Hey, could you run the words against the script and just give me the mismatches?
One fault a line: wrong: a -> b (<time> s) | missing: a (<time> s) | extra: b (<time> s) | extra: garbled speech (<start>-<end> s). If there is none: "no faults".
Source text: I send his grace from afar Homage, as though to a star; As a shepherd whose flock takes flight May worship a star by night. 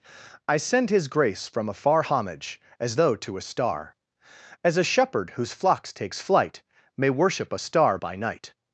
wrong: flock -> flocks (5.5 s)